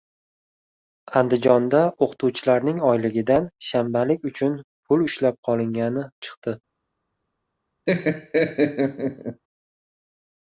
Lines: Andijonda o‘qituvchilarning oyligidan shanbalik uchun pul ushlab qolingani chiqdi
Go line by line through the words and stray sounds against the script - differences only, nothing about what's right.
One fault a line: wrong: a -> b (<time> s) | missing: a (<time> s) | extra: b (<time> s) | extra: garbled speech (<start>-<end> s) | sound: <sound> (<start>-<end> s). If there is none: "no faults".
sound: laugh (7.9-9.4 s)